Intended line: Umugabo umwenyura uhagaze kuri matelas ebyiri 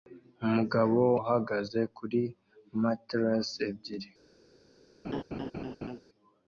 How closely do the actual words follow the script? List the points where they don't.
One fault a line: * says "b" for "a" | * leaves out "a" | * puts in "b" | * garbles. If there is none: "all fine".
* leaves out "umwenyura"